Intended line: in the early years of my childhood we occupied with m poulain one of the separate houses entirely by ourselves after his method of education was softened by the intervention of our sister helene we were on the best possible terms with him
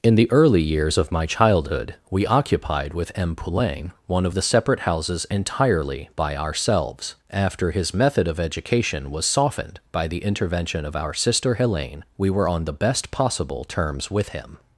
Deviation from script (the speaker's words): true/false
false